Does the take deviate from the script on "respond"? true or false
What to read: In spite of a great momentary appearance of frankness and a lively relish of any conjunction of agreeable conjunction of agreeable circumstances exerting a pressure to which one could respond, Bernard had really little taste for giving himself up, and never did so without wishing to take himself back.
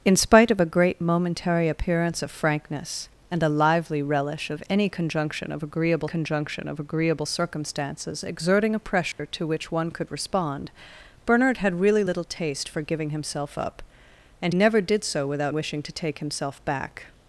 false